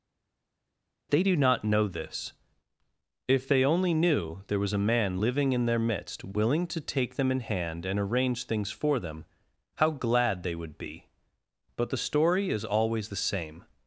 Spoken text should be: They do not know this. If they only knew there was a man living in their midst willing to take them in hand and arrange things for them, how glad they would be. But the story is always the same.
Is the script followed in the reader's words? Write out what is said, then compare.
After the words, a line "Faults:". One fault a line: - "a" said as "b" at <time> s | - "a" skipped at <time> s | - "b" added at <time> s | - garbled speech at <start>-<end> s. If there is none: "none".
They do not know this. If they only knew there was a man living in their midst willing to take them in hand and arrange things for them, how glad they would be. But the story is always the same.
Faults:
none